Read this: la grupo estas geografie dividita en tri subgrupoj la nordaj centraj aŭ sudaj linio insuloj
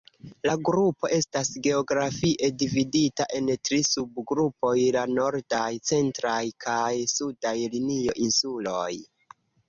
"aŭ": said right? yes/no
no